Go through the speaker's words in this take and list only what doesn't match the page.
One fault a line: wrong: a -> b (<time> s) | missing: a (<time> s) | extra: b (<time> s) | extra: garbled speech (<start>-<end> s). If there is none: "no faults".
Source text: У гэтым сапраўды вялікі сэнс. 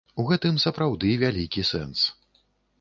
no faults